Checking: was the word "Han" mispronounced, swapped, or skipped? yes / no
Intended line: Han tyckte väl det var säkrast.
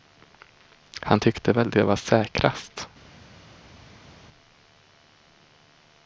no